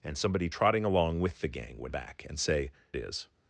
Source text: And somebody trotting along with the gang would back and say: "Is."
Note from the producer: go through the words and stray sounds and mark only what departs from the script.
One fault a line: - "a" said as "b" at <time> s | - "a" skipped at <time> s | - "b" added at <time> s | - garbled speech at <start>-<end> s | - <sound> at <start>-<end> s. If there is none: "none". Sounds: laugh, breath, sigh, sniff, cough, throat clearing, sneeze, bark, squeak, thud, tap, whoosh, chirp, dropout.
none